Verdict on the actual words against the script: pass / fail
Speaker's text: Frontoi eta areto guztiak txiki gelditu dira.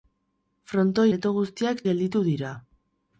fail